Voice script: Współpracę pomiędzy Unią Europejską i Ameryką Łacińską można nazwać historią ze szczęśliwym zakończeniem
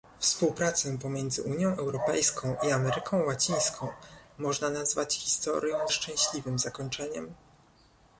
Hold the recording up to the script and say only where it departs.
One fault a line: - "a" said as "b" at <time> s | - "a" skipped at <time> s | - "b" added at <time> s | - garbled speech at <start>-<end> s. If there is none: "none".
- "ze" skipped at 5.9 s